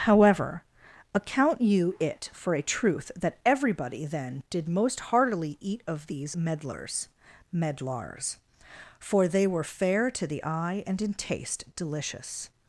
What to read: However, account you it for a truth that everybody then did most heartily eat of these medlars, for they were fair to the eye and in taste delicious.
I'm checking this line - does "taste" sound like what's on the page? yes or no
yes